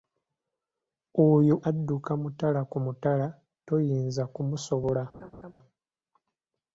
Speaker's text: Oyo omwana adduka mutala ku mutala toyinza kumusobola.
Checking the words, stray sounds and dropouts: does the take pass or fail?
fail